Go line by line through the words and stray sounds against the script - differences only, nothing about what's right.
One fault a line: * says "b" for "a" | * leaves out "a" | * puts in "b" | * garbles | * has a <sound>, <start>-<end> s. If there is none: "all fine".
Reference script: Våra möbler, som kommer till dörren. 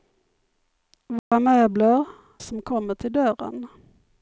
* has a dropout, 1.2-1.3 s